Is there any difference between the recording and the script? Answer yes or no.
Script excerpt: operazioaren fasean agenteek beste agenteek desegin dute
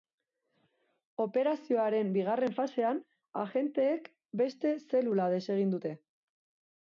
yes